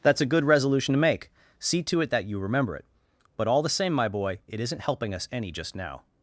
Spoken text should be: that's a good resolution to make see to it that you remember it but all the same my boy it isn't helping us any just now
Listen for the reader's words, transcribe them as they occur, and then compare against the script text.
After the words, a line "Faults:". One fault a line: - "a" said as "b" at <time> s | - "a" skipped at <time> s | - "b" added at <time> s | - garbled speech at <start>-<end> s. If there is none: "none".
that's a good resolution to make see to it that you remember it but all the same my boy it isn't helping us any just now
Faults:
none